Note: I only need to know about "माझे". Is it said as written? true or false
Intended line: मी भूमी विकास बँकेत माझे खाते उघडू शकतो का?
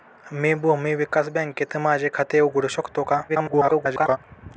true